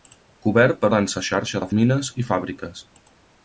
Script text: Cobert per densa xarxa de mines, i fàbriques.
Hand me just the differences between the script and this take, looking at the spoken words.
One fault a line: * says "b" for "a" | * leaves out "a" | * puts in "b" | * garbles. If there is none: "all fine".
all fine